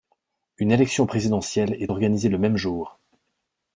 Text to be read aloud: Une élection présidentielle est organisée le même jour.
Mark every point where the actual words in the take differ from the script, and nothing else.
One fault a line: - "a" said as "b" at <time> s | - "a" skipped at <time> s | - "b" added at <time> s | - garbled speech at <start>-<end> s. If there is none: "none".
none